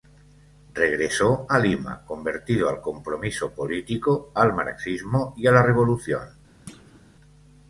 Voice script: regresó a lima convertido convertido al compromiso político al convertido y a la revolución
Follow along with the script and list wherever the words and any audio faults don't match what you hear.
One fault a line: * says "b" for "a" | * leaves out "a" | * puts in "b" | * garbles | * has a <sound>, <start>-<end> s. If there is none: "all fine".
* leaves out "convertido"
* says "marxismo" for "convertido"
* has a thud, 6.7-7.0 s